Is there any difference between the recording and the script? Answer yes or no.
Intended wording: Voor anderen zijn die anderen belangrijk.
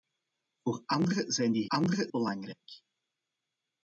no